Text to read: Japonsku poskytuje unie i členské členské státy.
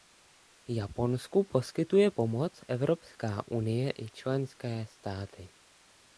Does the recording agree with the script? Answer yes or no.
no